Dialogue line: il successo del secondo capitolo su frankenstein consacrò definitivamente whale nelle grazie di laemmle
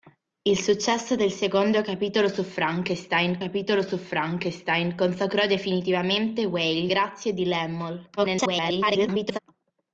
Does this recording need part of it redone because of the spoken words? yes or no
yes